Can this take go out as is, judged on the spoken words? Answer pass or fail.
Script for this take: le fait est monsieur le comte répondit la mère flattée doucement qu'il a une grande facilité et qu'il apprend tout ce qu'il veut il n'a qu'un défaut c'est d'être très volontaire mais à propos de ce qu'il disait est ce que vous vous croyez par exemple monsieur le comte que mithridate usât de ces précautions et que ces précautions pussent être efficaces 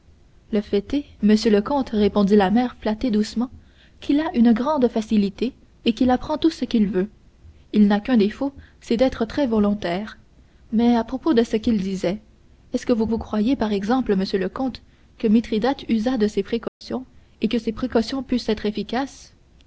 pass